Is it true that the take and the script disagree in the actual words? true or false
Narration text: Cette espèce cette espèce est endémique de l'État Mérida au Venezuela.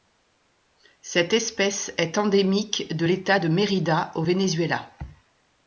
true